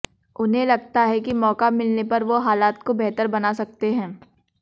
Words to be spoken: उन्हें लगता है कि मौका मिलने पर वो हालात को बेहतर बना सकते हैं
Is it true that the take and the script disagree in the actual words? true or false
false